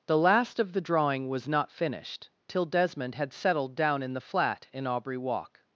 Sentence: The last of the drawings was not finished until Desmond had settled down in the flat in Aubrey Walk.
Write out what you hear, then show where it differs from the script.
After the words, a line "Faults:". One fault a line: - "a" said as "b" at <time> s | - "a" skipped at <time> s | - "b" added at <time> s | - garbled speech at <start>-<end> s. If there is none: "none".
The last of the drawing was not finished till Desmond had settled down in the flat in Aubrey Walk.
Faults:
- "drawings" said as "drawing" at 0.8 s
- "until" said as "till" at 2.5 s